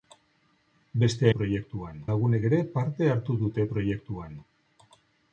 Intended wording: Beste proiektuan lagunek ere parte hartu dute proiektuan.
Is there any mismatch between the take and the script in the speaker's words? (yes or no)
no